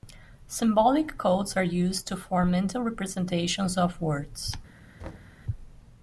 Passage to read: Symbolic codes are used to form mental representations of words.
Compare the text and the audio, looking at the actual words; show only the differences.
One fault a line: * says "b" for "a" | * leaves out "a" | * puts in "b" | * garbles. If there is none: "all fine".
all fine